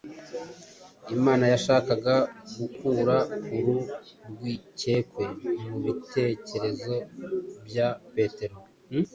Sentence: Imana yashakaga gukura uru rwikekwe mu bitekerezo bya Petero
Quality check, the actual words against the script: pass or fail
pass